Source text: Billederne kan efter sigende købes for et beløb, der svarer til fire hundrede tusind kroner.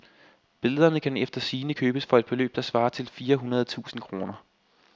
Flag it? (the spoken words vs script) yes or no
no